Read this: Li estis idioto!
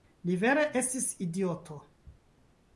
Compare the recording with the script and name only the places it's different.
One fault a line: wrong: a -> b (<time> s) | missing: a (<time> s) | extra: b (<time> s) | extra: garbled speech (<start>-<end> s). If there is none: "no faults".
extra: vere (0.4 s)